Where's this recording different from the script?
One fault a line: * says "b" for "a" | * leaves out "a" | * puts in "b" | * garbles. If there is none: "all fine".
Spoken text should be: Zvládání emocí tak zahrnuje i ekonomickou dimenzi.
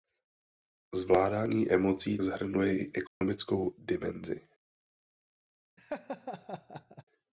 * leaves out "tak"